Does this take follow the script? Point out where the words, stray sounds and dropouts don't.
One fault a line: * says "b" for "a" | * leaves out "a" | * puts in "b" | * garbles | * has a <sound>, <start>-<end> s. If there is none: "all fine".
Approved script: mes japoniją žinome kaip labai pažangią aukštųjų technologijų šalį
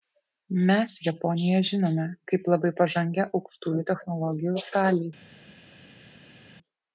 all fine